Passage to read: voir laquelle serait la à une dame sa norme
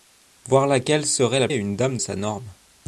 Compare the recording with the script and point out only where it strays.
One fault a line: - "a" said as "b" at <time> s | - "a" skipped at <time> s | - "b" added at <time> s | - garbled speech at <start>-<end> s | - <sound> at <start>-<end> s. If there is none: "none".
none